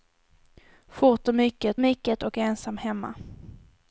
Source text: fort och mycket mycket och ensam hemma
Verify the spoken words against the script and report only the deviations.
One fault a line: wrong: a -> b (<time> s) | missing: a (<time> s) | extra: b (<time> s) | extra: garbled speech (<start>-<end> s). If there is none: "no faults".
no faults